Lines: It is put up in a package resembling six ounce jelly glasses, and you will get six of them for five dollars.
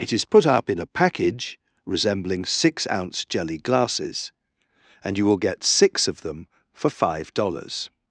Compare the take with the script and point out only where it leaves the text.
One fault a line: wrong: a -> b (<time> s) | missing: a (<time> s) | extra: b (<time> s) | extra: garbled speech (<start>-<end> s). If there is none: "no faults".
no faults